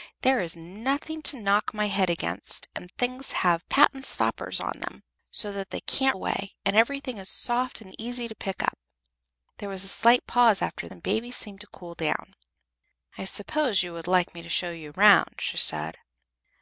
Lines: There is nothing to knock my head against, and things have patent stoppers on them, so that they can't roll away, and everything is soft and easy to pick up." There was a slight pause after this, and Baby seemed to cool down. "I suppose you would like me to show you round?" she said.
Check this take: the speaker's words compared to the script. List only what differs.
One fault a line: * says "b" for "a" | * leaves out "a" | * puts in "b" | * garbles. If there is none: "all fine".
* leaves out "roll"
* leaves out "this"